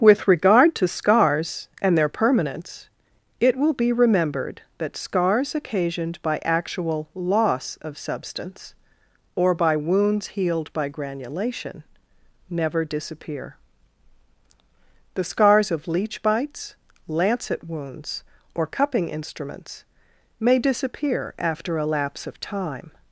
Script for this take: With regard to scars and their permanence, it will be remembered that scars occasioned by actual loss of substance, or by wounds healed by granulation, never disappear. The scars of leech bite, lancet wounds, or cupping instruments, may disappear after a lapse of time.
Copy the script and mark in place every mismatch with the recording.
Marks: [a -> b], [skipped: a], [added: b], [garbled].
With regard to scars and their permanence, it will be remembered that scars occasioned by actual loss of substance, or by wounds healed by granulation, never disappear. The scars of leech [bite, -> bites] lancet wounds, or cupping instruments, may disappear after a lapse of time.